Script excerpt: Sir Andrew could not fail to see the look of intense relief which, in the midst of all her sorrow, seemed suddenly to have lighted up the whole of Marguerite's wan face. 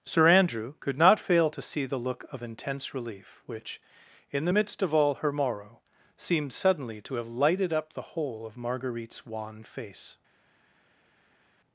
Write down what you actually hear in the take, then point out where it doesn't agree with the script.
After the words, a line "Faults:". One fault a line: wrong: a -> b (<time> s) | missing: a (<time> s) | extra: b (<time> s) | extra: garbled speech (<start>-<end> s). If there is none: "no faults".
Sir Andrew could not fail to see the look of intense relief which, in the midst of all her morrow, seemed suddenly to have lighted up the whole of Marguerite's wan face.
Faults:
wrong: sorrow -> morrow (5.3 s)